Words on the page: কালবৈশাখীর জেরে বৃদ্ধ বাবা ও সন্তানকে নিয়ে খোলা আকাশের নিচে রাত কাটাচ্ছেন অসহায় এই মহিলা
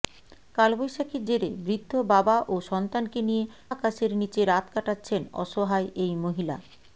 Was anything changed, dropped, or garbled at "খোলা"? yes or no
yes